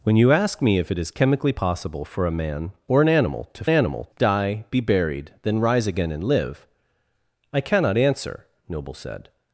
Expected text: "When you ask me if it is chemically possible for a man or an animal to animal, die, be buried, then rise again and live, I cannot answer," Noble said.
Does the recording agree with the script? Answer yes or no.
yes